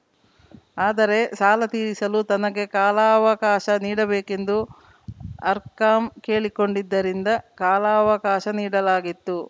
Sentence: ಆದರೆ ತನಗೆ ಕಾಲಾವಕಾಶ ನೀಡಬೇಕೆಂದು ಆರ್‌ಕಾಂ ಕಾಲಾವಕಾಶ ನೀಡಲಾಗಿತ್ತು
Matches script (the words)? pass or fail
fail